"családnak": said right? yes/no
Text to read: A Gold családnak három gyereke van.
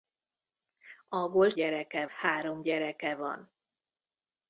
no